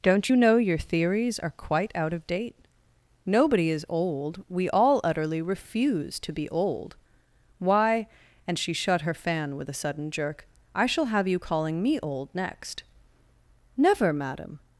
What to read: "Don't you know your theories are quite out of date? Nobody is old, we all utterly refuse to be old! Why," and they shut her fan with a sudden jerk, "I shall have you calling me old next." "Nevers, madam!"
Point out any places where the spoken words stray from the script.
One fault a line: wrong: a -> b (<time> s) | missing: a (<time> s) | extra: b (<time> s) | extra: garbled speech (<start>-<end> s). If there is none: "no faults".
wrong: they -> she (8.6 s)
wrong: Nevers -> Never (13.8 s)